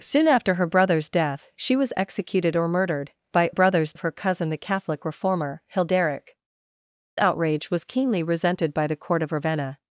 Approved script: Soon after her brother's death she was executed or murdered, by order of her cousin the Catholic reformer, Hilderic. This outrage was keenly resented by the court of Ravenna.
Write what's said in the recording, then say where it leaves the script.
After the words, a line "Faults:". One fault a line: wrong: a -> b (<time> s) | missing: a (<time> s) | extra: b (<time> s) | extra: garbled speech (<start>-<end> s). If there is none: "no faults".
Soon after her brother's death she was executed or murdered, by brother's of her cousin the Catholic reformer, Hilderic. Outrage was keenly resented by the court of Ravenna.
Faults:
wrong: order -> brother's (3.5 s)
missing: This (6.4 s)